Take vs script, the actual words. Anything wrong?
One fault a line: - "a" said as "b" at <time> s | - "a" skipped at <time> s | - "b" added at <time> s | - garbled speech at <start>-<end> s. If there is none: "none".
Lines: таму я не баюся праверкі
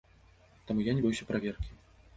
none